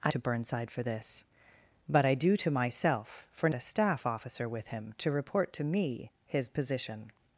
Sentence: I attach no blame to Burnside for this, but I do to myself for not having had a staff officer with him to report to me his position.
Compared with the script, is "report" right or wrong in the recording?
right